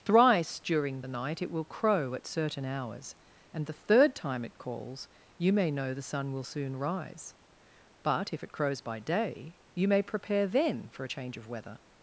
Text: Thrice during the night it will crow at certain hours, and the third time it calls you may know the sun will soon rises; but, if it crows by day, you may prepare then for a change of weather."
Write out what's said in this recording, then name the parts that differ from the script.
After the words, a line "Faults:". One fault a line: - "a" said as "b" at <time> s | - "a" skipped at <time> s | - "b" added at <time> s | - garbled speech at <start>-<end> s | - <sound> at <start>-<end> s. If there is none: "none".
Thrice during the night it will crow at certain hours, and the third time it calls you may know the sun will soon rise; but, if it crows by day, you may prepare then for a change of weather."
Faults:
- "rises" said as "rise" at 6.8 s